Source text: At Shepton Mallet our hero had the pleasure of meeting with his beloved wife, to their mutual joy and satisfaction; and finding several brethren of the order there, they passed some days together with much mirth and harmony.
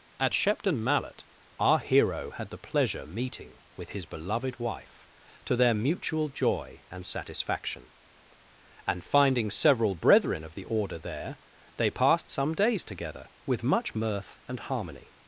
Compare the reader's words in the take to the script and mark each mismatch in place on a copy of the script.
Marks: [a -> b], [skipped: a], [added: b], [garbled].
At Shepton Mallet our hero had the pleasure [skipped: of] meeting with his beloved wife, to their mutual joy and satisfaction; and finding several brethren of the order there, they passed some days together with much mirth and harmony.